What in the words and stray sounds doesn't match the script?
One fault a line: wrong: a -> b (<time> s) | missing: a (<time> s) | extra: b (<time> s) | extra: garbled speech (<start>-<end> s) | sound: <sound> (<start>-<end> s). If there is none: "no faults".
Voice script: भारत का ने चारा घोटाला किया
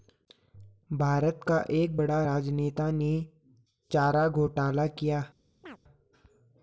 extra: एक बड़ा राजनेता (1.7 s)
sound: chirp (5.6-5.8 s)